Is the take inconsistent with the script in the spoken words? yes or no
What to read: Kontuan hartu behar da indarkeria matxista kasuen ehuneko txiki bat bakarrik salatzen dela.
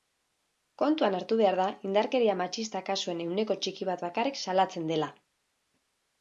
no